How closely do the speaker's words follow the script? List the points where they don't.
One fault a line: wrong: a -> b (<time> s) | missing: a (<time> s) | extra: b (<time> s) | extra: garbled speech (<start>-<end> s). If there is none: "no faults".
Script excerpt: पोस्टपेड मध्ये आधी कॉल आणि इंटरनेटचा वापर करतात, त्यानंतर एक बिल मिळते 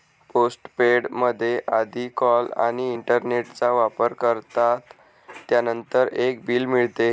no faults